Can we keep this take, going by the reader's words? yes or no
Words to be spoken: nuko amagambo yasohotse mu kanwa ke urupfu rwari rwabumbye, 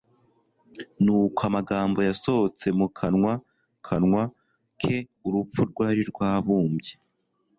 no